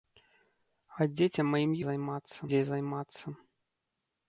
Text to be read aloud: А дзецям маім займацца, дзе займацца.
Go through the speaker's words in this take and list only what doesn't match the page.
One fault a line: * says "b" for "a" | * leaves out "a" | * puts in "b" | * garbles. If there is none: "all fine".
all fine